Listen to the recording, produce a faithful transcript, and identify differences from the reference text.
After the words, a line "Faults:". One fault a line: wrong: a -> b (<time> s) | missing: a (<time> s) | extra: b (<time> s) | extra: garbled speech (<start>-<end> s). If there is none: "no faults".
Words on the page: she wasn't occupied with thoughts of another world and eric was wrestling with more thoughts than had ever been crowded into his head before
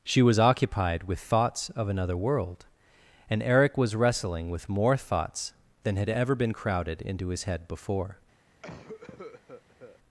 she was occupied with thoughts of another world and eric was wrestling with more thoughts than had ever been crowded into his head before
Faults:
wrong: wasn't -> was (0.2 s)